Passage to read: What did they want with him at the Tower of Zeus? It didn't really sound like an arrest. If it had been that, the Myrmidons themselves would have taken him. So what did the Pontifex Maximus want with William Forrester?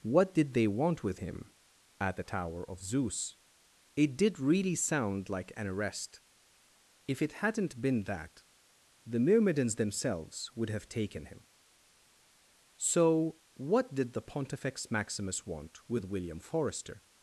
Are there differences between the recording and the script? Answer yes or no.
yes